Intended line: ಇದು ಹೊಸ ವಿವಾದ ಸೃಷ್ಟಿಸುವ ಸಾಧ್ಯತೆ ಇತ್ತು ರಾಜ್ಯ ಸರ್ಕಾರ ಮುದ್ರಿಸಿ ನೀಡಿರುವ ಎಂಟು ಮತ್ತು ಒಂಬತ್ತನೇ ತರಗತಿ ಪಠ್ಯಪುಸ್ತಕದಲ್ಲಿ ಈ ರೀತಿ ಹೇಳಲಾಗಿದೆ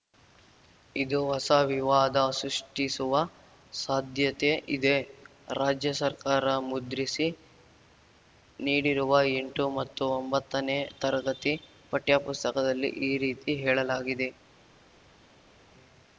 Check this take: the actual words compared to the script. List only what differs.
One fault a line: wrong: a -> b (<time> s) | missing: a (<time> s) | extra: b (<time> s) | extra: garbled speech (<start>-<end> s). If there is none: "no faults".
wrong: ಇತ್ತು -> ಇದೆ (4.8 s)